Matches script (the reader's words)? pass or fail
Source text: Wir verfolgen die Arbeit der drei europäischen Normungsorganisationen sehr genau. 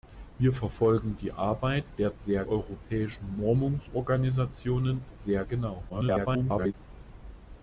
fail